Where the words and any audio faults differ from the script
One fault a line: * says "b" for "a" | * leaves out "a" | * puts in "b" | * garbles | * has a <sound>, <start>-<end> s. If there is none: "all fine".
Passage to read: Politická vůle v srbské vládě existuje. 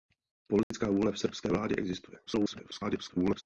* has a dropout, 0.6-0.7 s
* garbles